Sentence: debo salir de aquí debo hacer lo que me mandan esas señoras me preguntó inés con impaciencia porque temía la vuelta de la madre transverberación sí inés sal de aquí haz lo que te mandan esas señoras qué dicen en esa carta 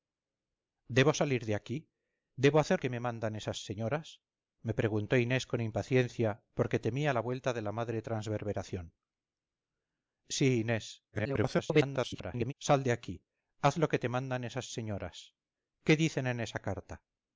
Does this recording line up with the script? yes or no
no